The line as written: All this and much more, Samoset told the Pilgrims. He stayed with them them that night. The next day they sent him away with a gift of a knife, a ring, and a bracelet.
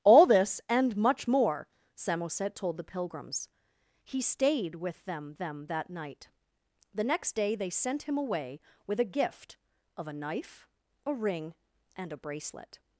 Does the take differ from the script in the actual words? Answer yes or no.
no